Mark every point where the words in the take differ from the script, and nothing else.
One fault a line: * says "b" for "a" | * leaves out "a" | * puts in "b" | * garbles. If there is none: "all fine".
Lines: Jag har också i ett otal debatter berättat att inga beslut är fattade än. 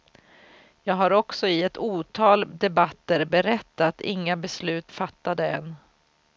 * leaves out "att"
* leaves out "är"